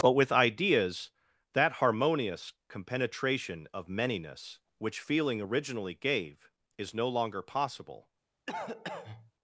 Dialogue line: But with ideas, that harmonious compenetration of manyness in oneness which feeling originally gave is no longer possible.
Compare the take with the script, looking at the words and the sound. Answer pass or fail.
fail